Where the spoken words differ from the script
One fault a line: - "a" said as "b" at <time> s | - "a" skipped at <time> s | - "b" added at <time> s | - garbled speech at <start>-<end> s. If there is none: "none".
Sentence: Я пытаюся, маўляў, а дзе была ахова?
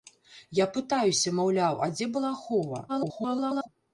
- garbled speech at 2.9-3.7 s